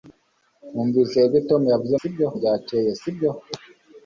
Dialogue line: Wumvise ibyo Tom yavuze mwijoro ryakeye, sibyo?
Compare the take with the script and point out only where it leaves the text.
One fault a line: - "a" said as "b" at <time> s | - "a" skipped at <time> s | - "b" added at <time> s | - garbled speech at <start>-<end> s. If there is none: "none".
- "mwijoro" said as "sibyo" at 2.0 s